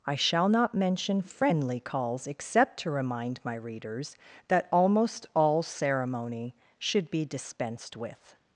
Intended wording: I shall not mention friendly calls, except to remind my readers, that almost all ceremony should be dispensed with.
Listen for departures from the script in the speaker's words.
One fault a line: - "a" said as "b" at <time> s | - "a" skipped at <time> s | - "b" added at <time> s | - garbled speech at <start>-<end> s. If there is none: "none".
none